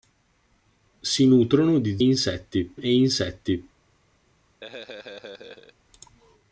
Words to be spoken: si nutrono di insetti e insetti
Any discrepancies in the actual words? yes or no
no